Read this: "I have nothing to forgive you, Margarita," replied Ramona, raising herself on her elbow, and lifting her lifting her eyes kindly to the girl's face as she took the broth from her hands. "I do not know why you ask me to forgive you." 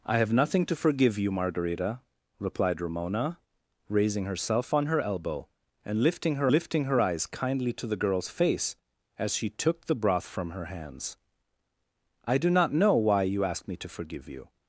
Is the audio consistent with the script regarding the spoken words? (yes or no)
yes